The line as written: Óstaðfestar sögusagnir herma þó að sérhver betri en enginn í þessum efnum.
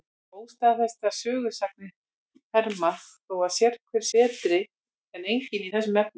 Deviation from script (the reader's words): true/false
false